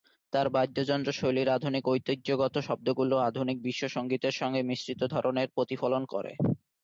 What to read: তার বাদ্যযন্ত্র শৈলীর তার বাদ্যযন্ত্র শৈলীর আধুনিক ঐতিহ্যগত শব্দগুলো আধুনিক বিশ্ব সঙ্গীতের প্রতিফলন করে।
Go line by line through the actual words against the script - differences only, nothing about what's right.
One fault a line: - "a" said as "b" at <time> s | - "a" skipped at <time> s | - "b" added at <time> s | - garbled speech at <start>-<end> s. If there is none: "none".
- "তার বাদ্যযন্ত্র শৈলীর" skipped at 1.5 s
- "সঙ্গে মিশ্রিত ধরনের" added at 4.3 s